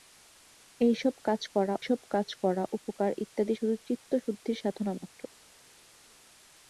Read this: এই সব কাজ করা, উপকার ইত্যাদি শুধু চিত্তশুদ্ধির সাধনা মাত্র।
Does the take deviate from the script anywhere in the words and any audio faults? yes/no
yes